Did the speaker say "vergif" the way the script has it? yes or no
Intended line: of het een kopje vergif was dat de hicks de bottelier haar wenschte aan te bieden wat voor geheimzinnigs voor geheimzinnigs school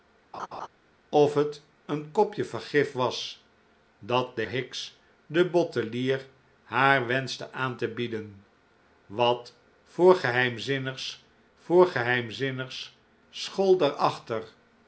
yes